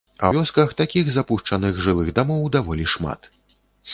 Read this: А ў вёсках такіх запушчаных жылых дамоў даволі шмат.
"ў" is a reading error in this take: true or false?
true